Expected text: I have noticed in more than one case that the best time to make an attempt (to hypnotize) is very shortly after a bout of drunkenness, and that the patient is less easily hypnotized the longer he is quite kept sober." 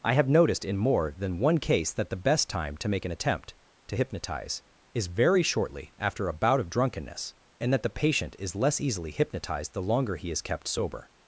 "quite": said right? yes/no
no